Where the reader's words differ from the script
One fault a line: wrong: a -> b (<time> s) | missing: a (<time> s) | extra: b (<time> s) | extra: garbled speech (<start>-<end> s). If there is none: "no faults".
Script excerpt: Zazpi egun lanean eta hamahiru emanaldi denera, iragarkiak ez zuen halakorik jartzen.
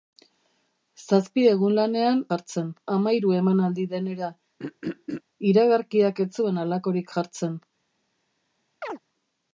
wrong: eta -> jartzen (2.3 s)